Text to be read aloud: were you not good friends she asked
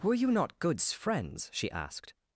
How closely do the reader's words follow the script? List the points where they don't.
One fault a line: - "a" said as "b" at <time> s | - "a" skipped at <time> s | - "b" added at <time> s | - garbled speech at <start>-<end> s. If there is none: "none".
- "good" said as "goods" at 0.6 s